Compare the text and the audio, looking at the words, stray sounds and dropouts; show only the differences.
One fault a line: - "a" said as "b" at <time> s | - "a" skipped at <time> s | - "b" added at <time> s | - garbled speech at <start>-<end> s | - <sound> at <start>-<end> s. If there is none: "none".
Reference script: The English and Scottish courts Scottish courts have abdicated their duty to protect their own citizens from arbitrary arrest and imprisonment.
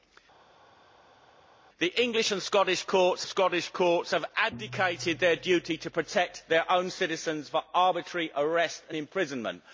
none